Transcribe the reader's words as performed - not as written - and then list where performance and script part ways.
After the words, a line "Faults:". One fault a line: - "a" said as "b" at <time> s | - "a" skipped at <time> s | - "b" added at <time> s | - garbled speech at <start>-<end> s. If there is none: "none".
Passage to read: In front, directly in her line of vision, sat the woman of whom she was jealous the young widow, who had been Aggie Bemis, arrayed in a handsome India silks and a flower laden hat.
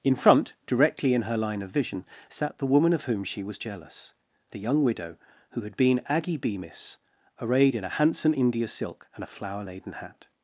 In front, directly in her line of vision, sat the woman of whom she was jealous the young widow, who had been Aggie Bemis, arrayed in a handsome India silk and a flower laden hat.
Faults:
- "silks" said as "silk" at 8.7 s